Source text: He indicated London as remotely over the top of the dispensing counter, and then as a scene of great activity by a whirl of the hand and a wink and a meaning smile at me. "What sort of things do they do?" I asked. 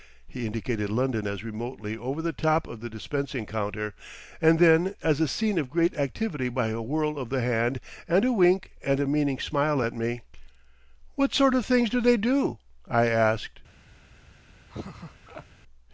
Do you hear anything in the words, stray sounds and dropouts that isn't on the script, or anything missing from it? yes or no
yes